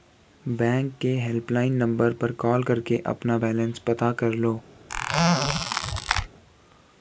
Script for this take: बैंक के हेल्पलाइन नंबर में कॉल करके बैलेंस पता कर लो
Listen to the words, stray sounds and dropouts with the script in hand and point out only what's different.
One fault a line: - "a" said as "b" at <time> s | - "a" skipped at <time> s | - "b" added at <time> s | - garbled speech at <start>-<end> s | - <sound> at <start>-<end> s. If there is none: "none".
- "में" said as "पर" at 2.1 s
- "अपना" added at 3.1 s
- squeak at 4.9-6.3 s